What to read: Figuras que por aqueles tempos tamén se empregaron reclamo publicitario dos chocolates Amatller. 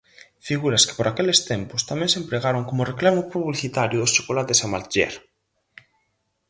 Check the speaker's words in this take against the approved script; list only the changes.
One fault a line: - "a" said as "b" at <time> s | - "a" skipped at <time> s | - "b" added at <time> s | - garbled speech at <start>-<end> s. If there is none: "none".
- "como" added at 2.7 s